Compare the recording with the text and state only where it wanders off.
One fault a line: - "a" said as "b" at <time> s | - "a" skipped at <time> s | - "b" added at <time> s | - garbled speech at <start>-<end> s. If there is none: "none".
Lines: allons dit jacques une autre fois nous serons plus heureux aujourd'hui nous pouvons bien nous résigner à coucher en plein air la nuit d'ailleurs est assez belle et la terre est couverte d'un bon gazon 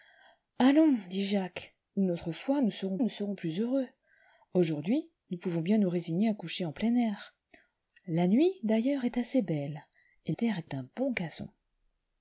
- "nous serons" added at 3.0 s
- "la" skipped at 10.3 s
- "couverte" skipped at 10.7 s